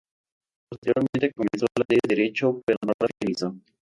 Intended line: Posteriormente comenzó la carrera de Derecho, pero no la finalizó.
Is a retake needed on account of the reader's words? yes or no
yes